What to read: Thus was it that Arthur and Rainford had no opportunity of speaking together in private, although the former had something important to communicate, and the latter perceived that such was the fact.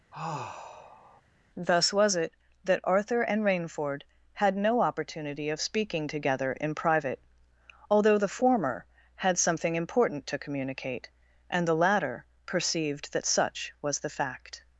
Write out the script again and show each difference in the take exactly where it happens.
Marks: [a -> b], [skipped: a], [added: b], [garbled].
Thus was it that Arthur and Rainford had no opportunity of speaking together in private, although the former had something important to communicate, and the latter perceived that such was the fact.